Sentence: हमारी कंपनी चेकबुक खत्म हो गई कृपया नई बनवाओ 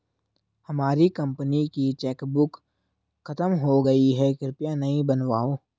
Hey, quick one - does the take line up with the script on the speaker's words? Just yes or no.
no